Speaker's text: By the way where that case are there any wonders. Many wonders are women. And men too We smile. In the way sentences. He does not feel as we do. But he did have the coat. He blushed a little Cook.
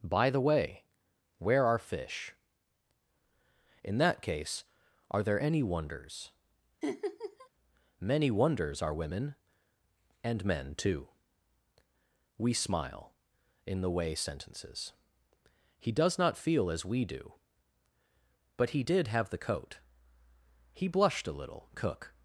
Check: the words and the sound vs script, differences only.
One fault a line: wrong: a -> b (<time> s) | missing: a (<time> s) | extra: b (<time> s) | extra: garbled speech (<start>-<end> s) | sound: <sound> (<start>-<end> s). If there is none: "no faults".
extra: are fish In (1.6 s)
sound: laugh (6.8-7.5 s)